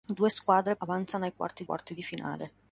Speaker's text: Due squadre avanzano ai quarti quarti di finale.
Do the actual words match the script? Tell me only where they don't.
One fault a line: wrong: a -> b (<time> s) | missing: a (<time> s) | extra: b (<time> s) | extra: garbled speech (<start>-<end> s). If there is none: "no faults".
no faults